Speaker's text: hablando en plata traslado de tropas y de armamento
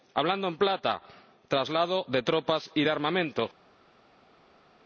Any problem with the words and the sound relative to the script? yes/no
no